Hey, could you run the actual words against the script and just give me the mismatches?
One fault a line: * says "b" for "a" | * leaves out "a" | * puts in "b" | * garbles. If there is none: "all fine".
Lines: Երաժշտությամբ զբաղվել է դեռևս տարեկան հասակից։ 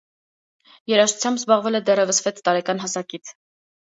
* puts in "վեց"